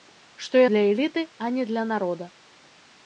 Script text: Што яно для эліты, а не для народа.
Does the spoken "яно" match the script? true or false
false